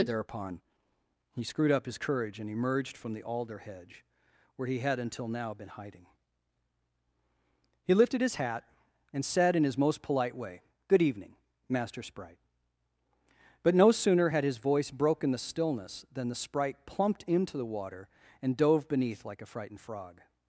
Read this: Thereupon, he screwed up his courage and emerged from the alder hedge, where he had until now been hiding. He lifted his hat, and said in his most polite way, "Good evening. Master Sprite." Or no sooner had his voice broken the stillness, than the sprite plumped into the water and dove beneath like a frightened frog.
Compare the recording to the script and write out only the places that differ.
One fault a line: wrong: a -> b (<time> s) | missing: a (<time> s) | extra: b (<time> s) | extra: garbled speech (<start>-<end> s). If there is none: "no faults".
wrong: Or -> But (13.6 s)